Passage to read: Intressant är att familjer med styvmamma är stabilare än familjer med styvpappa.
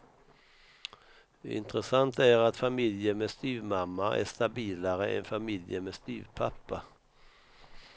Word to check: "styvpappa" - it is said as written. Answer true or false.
true